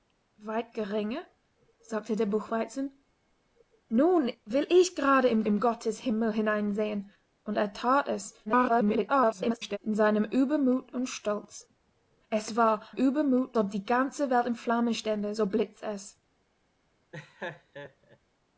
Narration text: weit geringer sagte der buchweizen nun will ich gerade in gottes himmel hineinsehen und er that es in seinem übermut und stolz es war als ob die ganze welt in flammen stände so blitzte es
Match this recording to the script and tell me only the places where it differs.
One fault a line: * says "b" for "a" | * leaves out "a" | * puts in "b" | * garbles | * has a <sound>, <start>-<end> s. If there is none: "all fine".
* puts in "in"
* garbles
* says "übermut" for "als"
* has a laugh, 17.1-18.2 s